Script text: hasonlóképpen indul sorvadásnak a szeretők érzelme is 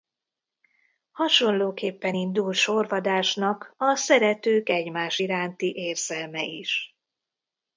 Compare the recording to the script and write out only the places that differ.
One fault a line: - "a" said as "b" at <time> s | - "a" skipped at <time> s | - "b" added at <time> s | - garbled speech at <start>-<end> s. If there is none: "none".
- "egymás iránti" added at 4.7 s